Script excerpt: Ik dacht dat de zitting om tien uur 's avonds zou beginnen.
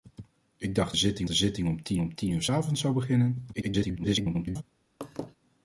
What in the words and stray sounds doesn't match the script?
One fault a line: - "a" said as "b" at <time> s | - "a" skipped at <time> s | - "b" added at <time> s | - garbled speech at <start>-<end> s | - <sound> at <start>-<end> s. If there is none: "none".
- "dat" said as "zitting" at 0.9 s
- "om tien" added at 2.0 s
- garbled speech at 3.5-4.6 s
- laugh at 5.0-5.4 s